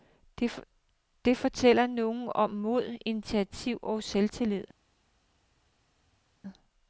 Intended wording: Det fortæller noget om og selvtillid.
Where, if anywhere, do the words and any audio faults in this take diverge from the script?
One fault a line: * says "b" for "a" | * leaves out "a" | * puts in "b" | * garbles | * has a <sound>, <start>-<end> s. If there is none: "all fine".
* puts in "mod initiativ"